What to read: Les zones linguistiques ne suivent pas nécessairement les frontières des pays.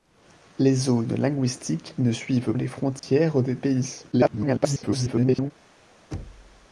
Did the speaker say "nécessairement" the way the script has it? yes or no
no